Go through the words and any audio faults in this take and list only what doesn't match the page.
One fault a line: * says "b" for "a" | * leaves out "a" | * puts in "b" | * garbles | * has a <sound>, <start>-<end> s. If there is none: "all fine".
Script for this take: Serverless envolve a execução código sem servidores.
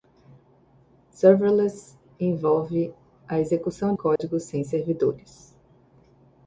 * has a dropout, 4.2-4.2 s